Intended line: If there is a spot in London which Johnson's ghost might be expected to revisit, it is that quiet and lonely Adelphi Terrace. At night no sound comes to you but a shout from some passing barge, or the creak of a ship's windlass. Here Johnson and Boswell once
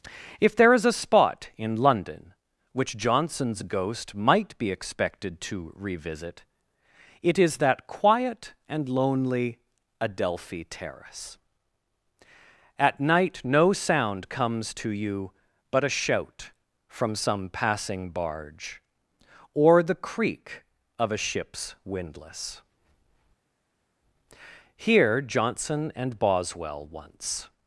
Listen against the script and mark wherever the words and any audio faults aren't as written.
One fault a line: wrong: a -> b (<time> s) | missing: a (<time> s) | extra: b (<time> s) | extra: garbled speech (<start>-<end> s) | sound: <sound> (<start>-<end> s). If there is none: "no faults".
no faults